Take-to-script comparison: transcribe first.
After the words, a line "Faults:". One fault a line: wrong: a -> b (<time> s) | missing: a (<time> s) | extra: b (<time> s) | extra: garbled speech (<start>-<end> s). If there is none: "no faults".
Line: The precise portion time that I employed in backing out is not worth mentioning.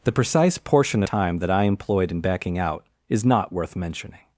The precise portion time that I employed in backing out is not worth mentioning.
Faults:
no faults